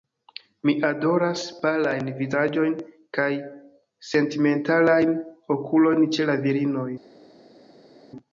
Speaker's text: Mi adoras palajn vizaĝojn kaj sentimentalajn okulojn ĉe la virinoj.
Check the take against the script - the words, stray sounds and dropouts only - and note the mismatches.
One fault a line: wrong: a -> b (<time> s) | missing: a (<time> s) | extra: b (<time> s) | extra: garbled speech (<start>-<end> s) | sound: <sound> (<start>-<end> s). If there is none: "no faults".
no faults